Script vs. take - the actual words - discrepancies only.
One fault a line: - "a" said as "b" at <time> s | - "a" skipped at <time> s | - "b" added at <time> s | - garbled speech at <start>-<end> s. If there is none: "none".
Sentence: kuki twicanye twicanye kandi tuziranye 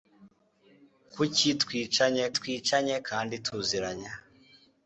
none